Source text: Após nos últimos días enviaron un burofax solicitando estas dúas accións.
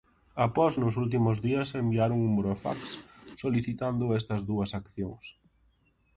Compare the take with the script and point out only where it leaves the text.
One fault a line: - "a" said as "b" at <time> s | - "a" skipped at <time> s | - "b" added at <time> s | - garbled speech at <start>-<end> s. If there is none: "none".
none